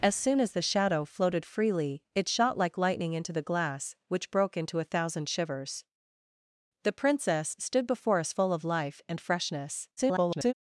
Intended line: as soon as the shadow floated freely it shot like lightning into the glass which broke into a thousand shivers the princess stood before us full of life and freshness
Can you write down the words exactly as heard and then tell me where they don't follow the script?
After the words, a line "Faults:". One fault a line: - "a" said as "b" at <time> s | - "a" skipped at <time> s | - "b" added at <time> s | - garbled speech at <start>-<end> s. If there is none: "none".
as soon as the shadow floated freely it shot like lightning into the glass which broke into a thousand shivers the princess stood before us full of life and freshness [garbled]
Faults:
- garbled speech at 10.0-10.5 s